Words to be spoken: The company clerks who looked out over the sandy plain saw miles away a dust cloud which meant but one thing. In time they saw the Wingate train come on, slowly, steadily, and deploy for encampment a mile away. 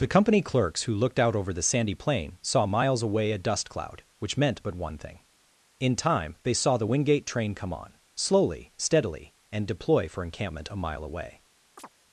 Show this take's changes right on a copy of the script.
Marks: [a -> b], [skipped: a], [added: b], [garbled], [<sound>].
The company clerks who looked out over the sandy plain saw miles away a dust cloud which meant but one thing. In time they saw the Wingate train come on, slowly, steadily, and deploy for encampment a mile away. [chirp]